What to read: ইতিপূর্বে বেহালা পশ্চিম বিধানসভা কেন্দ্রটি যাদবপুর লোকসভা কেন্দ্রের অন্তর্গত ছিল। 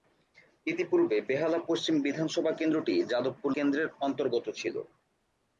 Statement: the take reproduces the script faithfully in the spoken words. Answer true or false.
false